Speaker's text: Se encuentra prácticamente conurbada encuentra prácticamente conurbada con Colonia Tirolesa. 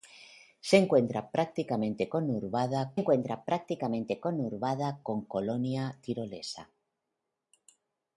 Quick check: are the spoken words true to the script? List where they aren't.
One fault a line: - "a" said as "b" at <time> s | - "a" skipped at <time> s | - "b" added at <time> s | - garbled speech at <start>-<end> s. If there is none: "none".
none